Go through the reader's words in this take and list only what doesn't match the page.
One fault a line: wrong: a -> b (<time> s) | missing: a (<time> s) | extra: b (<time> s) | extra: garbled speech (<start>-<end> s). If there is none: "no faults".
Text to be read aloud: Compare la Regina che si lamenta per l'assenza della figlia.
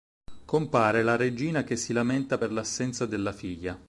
no faults